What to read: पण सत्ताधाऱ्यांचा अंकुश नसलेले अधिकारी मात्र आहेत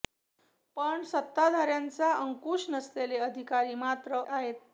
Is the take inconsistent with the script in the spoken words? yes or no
no